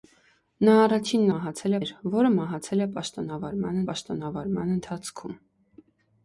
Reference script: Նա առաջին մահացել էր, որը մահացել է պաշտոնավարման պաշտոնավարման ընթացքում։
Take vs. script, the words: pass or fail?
pass